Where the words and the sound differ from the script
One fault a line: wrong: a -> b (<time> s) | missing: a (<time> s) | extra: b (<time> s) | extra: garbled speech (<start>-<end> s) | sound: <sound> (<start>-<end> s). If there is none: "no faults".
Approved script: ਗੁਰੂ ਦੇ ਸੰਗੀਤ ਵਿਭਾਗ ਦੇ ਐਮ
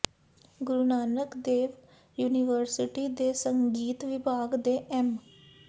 extra: ਨਾਨਕ ਦੇਵ ਯੂਨੀਵਰਸਿਟੀ (0.8 s)